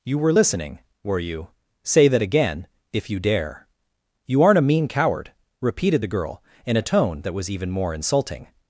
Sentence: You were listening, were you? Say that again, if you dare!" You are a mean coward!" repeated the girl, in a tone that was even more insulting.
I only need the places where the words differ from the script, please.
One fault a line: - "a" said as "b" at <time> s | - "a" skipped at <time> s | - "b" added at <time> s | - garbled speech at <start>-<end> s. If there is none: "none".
- "are" said as "aren't" at 4.4 s